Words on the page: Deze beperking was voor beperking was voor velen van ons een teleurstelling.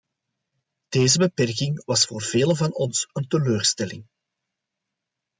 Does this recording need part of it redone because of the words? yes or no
yes